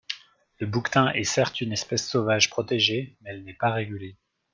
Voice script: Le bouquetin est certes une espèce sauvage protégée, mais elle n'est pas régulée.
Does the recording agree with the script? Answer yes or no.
yes